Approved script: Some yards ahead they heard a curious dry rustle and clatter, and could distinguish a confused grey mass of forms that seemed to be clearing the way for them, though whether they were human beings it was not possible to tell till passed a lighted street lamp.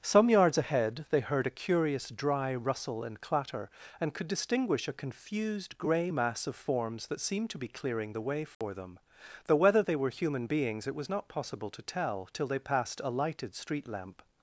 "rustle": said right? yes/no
yes